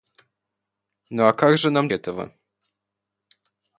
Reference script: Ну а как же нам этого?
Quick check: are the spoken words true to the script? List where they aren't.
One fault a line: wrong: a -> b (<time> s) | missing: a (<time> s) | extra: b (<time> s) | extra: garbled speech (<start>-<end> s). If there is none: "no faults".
no faults